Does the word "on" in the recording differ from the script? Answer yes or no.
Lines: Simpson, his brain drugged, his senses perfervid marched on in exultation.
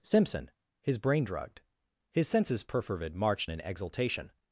yes